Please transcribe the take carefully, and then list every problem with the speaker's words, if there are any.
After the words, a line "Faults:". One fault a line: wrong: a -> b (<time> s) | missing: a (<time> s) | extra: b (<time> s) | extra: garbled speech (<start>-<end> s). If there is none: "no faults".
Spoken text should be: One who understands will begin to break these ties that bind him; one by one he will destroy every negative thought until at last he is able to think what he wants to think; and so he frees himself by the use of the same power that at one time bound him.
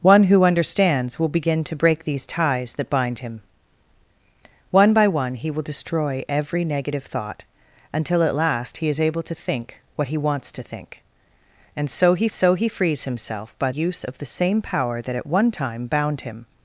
One who understands will begin to break these ties that bind him; one by one he will destroy every negative thought until at last he is able to think what he wants to think; and so he so he frees himself by use of the same power that at one time bound him.
Faults:
extra: so he (12.3 s)
missing: the (13.7 s)